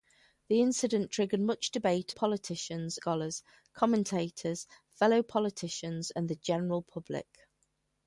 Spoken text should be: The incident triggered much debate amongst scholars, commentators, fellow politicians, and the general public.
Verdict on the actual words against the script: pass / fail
fail